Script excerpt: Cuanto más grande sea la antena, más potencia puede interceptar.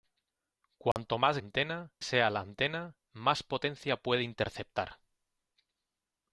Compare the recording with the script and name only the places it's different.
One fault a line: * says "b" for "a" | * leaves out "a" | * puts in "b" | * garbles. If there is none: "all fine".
* says "antena" for "grande"